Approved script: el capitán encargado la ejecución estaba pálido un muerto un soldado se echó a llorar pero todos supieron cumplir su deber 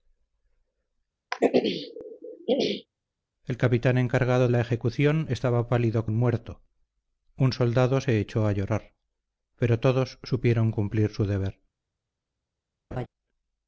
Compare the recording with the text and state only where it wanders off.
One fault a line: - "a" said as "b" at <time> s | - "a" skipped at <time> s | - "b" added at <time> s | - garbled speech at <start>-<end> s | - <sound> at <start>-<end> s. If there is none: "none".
- throat clearing at 1.3-2.9 s
- laugh at 12.9-13.1 s